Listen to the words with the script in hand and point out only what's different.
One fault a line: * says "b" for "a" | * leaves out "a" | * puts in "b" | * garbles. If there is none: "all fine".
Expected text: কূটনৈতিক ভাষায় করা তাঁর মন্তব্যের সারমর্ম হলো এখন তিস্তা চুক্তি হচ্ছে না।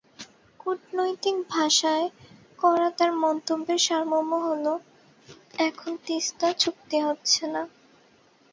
all fine